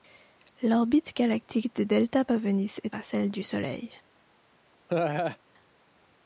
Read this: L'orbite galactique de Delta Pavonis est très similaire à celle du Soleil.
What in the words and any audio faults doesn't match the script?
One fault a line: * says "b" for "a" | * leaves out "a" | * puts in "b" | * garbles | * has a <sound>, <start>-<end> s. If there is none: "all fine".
* leaves out "très similaire"
* has a laugh, 4.9-5.4 s